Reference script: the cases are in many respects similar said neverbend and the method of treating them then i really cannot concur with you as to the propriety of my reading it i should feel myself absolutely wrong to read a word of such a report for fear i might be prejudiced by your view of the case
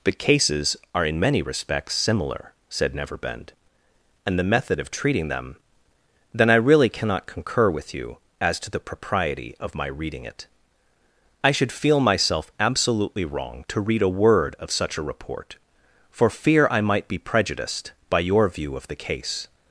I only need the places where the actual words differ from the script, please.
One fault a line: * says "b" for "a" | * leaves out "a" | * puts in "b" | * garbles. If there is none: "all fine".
all fine